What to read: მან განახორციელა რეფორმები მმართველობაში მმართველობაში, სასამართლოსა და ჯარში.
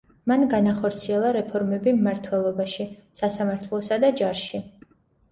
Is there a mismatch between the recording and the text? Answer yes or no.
yes